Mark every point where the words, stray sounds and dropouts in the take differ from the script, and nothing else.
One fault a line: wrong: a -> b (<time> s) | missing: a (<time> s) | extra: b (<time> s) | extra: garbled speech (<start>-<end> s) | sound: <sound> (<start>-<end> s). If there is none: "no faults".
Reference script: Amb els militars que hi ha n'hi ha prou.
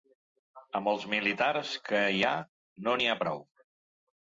extra: no (2.9 s)